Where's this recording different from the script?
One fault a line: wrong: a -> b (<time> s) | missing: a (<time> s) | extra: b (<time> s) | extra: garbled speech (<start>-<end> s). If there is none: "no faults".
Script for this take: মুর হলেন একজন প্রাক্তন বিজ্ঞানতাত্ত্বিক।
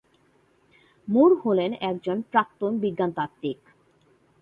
no faults